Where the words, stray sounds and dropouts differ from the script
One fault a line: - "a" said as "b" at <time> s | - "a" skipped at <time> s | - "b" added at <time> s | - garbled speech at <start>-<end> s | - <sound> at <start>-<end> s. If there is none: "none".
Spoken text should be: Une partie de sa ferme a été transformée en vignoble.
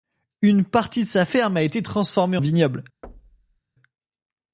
- "en" skipped at 2.4 s
- thud at 3.0-3.6 s